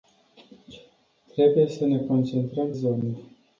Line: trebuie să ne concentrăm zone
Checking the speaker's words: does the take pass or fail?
pass